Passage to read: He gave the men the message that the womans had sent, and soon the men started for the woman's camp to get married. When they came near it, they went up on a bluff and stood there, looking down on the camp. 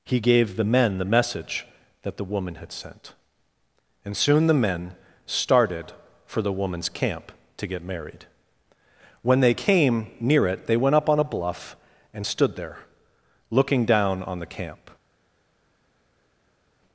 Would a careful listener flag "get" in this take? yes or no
no